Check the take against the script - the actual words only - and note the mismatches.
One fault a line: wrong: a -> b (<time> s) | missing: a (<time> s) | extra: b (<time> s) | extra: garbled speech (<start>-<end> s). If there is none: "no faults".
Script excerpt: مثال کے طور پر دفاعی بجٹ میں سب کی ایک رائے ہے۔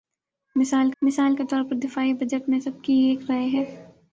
extra: مثال (1.0 s)